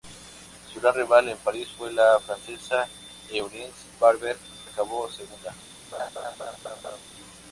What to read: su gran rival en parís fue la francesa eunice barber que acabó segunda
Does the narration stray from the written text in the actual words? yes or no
yes